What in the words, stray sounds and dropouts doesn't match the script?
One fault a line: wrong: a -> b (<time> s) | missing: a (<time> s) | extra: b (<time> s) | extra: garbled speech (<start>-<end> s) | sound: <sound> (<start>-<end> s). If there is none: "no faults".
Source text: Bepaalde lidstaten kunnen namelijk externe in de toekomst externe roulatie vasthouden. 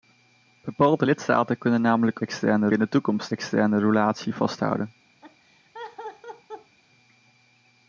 sound: laugh (5.2-6.8 s)